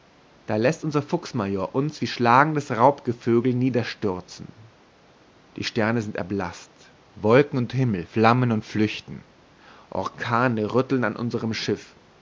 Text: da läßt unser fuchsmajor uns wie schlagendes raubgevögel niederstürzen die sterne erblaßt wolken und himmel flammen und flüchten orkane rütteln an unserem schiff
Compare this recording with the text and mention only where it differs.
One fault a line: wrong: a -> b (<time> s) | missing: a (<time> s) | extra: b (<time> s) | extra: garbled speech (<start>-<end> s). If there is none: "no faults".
extra: sind (6.0 s)